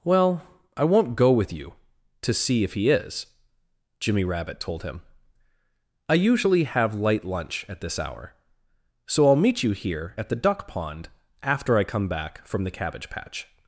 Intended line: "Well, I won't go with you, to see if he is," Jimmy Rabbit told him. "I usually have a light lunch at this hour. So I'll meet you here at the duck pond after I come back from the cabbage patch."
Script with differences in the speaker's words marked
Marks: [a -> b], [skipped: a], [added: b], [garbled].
"Well, I won't go with you, to see if he is," Jimmy Rabbit told him. "I usually have [skipped: a] light lunch at this hour. So I'll meet you here at the duck pond after I come back from the cabbage patch."